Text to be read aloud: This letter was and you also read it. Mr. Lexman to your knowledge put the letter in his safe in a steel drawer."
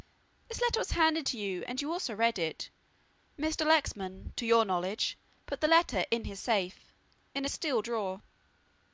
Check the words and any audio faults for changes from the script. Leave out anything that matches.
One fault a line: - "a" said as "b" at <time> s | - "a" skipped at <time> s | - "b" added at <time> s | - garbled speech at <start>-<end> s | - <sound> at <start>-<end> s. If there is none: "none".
- "handed to you" added at 0.9 s